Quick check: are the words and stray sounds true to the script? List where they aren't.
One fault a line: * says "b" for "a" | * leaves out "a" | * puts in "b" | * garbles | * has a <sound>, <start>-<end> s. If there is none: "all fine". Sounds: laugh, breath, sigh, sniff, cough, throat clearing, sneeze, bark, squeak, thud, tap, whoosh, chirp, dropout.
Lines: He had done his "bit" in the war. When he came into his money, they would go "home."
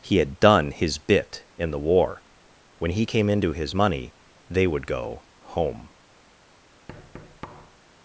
* has a thud, 6.9-7.8 s